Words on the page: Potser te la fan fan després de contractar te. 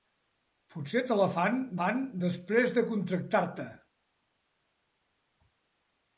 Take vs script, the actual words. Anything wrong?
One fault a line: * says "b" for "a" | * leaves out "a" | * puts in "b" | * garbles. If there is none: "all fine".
all fine